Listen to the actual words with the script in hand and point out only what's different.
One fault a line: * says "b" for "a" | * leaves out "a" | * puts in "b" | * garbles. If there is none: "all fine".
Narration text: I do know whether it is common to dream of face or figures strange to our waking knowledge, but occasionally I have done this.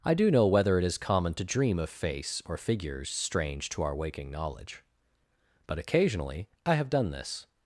all fine